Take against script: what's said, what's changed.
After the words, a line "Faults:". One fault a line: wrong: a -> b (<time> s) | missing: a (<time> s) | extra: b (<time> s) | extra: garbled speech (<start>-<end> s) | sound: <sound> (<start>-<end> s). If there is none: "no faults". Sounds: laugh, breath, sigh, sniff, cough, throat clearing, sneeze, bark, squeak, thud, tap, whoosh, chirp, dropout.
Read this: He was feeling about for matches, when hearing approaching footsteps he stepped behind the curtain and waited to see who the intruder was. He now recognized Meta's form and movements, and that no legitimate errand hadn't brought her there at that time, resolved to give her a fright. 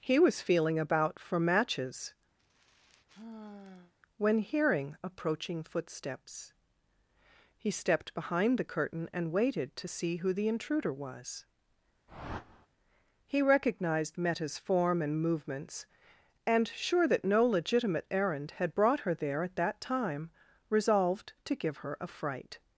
He was feeling about for matches, when hearing approaching footsteps he stepped behind the curtain and waited to see who the intruder was. He recognized Meta's form and movements, and sure that no legitimate errand had brought her there at that time, resolved to give her a fright.
Faults:
sound: sigh (2.4-3.9 s)
sound: whoosh (12.1-12.7 s)
missing: now (13.4 s)
extra: sure (16.7 s)
wrong: hadn't -> had (18.5 s)